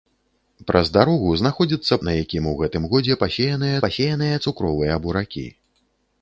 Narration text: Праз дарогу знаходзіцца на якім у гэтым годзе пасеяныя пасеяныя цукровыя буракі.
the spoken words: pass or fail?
pass